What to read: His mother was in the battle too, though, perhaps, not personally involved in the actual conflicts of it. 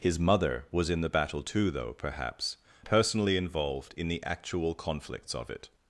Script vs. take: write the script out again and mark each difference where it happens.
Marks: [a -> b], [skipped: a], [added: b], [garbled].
His mother was in the battle too, though, perhaps, [skipped: not] personally involved in the actual conflicts of it.